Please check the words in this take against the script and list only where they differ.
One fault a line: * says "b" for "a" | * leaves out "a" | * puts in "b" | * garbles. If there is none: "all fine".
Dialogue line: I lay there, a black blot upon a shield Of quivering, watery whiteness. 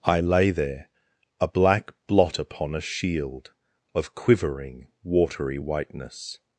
all fine